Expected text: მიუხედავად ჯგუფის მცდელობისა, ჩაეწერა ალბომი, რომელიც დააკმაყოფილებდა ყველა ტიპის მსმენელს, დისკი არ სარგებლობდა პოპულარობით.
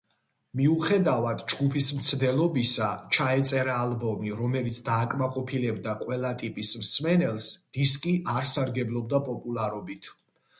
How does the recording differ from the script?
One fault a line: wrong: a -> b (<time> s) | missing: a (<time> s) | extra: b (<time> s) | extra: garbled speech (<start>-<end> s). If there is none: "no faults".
no faults